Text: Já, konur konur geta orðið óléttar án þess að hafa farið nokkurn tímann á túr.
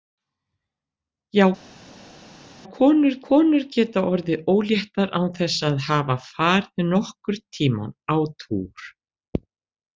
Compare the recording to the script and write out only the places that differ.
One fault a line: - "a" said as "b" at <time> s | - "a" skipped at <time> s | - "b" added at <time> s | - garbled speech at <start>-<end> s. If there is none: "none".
none